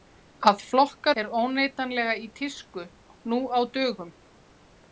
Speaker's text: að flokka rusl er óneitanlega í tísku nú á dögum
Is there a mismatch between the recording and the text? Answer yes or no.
yes